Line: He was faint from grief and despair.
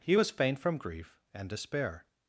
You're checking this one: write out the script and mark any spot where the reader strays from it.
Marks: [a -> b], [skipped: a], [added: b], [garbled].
He was faint from grief and despair.